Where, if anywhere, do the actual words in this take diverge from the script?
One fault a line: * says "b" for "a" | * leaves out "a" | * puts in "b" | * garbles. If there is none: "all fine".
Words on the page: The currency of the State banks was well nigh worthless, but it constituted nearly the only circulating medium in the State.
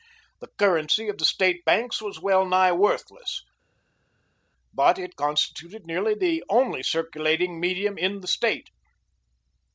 all fine